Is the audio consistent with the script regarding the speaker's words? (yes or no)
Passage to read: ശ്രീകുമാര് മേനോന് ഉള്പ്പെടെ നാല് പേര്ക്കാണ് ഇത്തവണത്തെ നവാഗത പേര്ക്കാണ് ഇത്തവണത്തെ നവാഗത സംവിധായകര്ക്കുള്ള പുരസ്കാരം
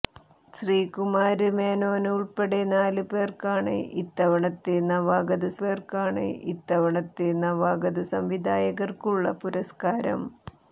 yes